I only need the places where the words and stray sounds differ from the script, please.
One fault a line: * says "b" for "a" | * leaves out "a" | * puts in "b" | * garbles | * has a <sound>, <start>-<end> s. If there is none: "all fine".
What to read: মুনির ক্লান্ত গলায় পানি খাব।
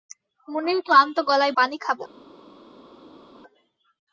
all fine